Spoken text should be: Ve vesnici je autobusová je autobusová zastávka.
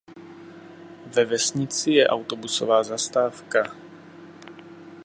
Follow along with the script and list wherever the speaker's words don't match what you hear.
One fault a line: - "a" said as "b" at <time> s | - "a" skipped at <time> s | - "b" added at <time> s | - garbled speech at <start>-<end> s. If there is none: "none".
- "je autobusová" skipped at 2.8 s